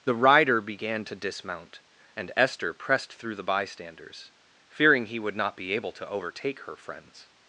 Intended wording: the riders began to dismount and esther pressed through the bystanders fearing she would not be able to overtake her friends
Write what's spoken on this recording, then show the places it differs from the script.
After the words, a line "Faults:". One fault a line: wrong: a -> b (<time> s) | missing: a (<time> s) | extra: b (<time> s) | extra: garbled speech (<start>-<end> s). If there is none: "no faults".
the rider began to dismount and esther pressed through the bystanders fearing he would not be able to overtake her friends
Faults:
wrong: riders -> rider (0.1 s)
wrong: she -> he (5.1 s)